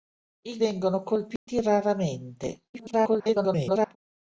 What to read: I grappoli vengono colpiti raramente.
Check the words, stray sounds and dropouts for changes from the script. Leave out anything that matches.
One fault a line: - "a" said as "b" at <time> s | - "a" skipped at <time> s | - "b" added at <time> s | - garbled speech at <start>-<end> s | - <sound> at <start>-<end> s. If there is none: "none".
- "grappoli" skipped at 0.6 s
- dropout at 1.4-1.5 s
- garbled speech at 2.7-4.0 s